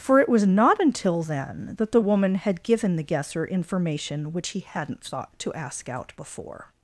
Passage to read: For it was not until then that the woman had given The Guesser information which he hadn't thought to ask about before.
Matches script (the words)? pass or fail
fail